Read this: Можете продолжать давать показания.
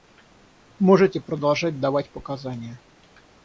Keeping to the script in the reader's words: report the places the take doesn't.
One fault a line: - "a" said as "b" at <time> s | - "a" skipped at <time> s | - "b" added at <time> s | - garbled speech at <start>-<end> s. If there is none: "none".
none